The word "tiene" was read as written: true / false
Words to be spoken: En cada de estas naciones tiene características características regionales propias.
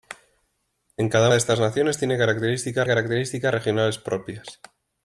true